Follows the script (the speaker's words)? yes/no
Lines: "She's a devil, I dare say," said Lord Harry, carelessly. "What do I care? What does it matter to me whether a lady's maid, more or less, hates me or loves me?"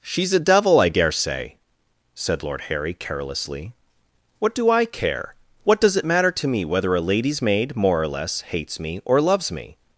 yes